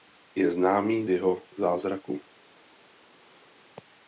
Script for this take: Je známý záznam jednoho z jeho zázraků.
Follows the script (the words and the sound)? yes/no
no